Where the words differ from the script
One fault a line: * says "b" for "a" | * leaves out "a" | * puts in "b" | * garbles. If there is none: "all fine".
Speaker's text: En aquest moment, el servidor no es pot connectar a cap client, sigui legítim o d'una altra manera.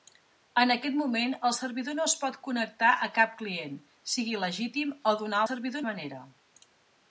* says "servidor" for "altra"